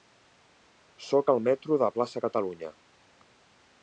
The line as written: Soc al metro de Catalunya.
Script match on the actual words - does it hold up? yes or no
no